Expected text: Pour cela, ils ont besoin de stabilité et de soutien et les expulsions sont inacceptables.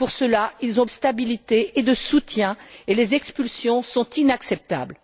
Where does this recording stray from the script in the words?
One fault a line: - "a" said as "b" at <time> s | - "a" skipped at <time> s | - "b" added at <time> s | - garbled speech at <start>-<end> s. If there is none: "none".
- "besoin de" skipped at 0.9 s